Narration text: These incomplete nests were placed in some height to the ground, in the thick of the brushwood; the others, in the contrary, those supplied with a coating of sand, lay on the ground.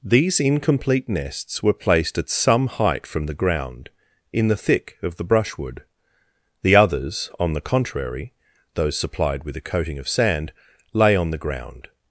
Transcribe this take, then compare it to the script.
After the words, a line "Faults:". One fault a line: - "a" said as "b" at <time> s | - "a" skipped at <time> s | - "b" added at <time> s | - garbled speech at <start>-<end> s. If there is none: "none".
These incomplete nests were placed at some height from the ground, in the thick of the brushwood; the others, on the contrary, those supplied with a coating of sand, lay on the ground.
Faults:
- "in" said as "at" at 2.2 s
- "to" said as "from" at 3.0 s
- "in" said as "on" at 7.4 s